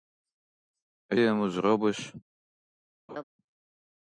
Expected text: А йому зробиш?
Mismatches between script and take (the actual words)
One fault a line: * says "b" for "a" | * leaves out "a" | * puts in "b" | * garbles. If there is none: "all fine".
all fine